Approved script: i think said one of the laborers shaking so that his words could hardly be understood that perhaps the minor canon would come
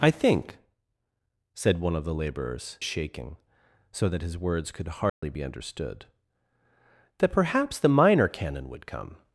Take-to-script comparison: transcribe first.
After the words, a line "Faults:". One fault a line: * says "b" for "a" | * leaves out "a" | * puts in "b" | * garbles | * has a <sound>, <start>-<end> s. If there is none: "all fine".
i think said one of the laborers shaking so that his words could hardly be understood that perhaps the minor canon would come
Faults:
* has a dropout, 5.1-5.2 s